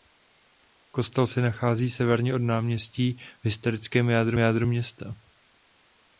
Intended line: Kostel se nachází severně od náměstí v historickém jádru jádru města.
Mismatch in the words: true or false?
false